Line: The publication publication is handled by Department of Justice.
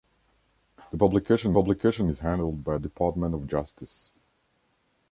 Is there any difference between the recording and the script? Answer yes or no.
no